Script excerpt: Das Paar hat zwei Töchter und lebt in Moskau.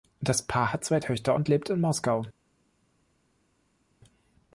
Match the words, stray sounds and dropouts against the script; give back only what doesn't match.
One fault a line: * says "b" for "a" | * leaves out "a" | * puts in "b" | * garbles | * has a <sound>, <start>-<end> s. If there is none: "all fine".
all fine